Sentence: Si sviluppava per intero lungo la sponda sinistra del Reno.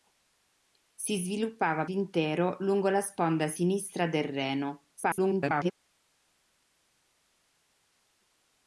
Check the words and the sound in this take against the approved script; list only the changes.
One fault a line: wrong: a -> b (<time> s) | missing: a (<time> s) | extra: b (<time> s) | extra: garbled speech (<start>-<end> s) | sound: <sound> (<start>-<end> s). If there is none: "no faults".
missing: per (1.9 s)
extra: garbled speech (4.9-5.7 s)